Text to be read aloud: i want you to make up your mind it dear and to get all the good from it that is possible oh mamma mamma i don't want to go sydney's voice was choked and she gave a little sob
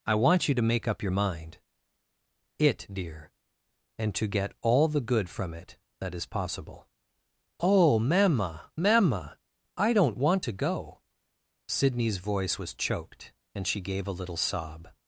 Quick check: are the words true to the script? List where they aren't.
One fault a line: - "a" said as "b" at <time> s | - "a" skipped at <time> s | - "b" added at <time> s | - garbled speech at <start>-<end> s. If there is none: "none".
none